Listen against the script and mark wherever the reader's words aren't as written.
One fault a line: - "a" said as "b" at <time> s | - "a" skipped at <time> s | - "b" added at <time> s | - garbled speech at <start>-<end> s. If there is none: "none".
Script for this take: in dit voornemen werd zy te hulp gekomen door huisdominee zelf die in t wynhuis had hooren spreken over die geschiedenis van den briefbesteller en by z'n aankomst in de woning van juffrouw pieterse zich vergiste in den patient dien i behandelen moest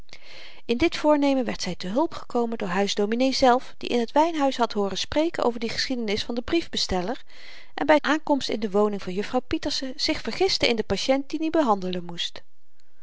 - "z'n" skipped at 8.0 s